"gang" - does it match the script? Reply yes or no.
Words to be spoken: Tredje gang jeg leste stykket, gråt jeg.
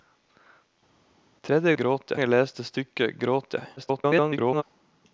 no